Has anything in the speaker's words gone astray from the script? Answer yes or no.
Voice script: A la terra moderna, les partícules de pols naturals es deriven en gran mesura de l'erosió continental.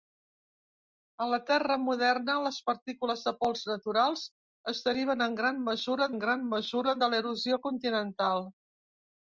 yes